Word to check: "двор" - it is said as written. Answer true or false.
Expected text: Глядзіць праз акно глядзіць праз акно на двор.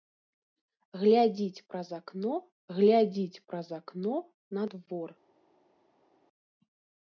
true